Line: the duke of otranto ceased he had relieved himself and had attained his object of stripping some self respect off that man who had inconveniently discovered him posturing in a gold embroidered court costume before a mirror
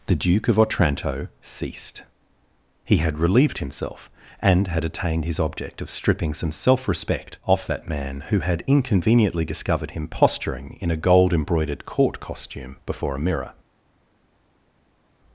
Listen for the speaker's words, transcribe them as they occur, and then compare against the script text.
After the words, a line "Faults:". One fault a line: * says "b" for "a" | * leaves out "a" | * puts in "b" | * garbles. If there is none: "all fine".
the duke of otranto ceased he had relieved himself and had attained his object of stripping some self respect off that man who had inconveniently discovered him posturing in a gold embroidered court costume before a mirror
Faults:
all fine